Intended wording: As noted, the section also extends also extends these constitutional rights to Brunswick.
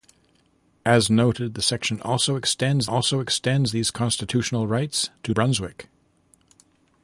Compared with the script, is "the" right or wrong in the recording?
right